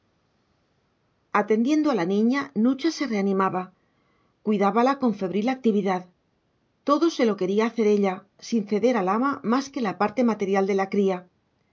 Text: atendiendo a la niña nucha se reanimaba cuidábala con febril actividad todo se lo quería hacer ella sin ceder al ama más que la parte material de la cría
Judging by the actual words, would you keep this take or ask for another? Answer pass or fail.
pass